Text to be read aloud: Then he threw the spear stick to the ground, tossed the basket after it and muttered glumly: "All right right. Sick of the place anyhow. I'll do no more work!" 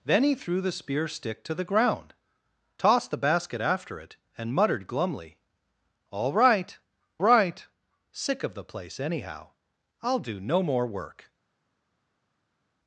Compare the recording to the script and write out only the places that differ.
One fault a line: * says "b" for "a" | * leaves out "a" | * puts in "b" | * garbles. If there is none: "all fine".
all fine